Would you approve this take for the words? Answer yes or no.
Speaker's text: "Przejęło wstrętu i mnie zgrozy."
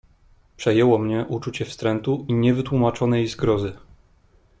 no